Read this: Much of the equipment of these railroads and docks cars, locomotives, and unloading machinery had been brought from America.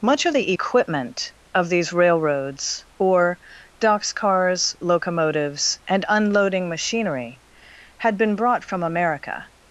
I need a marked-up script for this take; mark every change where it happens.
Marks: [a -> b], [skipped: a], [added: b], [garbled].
Much of the equipment of these railroads [and -> or] docks cars, locomotives, and unloading machinery had been brought from America.